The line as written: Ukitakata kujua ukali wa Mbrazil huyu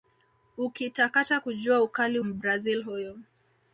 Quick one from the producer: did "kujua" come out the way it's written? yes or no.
yes